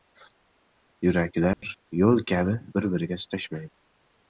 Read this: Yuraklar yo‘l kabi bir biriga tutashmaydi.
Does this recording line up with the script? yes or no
yes